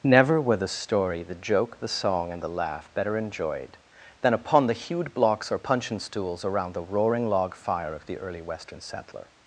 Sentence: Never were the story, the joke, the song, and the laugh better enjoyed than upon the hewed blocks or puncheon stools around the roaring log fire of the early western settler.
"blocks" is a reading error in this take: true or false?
false